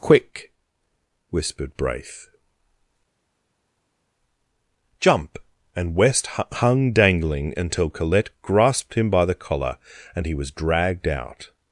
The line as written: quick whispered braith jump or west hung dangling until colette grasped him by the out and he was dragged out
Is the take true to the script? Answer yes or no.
no